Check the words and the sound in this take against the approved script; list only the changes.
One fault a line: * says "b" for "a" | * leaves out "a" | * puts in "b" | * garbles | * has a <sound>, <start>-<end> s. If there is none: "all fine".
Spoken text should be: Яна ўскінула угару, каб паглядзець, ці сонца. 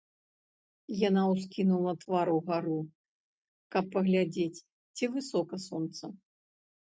* puts in "твар"
* puts in "высока"